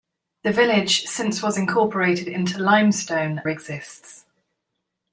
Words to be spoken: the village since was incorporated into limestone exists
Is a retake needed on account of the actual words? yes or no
no